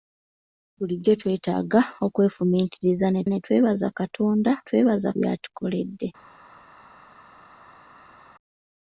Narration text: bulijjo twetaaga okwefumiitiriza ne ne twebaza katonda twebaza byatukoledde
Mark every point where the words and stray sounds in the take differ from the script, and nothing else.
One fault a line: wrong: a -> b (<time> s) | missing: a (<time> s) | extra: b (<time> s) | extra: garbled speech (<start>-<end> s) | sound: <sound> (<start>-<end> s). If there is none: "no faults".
no faults